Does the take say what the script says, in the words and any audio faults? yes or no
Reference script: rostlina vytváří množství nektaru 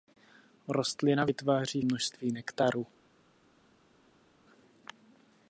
yes